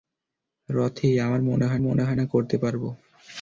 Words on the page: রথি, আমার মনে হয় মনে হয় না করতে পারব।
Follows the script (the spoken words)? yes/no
yes